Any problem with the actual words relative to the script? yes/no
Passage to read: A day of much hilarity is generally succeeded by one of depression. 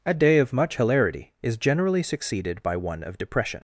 no